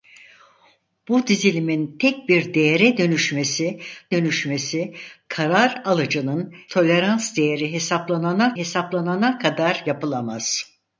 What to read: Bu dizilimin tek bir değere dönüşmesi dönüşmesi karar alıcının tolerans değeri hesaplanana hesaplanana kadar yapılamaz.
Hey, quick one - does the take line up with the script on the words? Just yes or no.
yes